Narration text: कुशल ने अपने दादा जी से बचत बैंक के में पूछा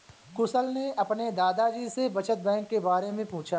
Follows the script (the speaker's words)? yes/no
no